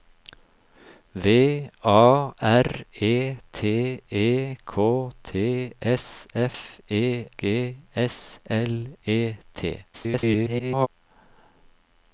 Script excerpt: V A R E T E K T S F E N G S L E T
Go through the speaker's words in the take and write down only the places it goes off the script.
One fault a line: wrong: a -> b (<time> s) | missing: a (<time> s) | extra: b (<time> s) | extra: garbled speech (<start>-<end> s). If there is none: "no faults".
missing: N (7.3 s)
extra: garbled speech (9.9-10.9 s)